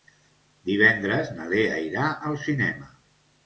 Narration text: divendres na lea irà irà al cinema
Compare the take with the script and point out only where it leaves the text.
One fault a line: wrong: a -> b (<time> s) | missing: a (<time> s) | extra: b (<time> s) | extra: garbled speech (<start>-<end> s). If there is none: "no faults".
missing: irà (2.1 s)